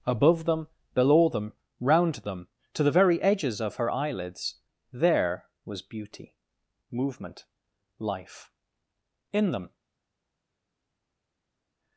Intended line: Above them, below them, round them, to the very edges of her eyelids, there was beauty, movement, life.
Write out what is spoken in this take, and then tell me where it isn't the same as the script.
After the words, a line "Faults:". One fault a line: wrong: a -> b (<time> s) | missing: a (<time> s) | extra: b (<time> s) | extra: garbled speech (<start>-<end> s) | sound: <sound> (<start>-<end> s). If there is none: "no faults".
Above them, below them, round them, to the very edges of her eyelids, there was beauty, movement, life. In them
Faults:
extra: In them (9.3 s)